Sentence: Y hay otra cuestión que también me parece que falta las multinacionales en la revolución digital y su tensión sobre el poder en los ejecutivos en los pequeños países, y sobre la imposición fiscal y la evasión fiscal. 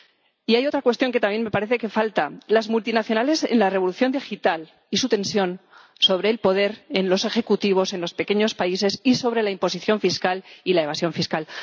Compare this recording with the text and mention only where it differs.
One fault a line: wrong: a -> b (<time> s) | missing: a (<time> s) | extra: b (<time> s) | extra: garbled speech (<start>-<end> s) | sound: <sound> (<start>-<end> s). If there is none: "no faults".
no faults